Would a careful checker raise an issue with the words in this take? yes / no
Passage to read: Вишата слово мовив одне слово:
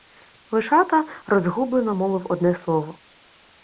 yes